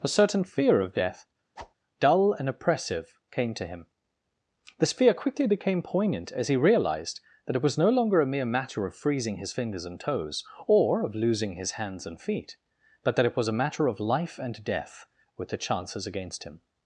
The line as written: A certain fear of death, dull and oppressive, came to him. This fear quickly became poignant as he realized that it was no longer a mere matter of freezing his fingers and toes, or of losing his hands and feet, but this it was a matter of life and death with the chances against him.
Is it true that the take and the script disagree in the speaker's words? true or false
true